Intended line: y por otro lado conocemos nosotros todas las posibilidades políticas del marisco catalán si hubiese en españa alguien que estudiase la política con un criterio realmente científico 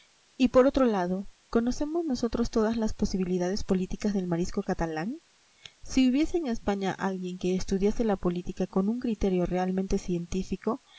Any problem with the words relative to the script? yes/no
no